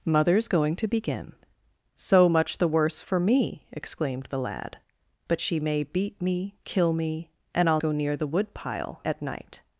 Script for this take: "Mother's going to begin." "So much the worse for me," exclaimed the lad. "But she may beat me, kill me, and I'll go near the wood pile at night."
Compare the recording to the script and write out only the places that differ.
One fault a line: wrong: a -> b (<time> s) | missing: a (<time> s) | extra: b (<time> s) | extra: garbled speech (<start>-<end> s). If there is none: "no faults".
no faults